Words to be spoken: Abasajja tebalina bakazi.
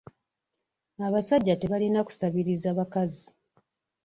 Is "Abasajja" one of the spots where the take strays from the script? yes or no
no